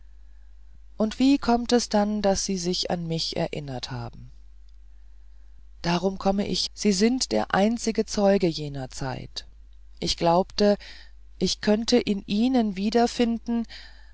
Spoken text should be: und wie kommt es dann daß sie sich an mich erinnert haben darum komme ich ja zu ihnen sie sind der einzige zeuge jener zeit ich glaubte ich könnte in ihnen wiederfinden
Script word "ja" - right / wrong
wrong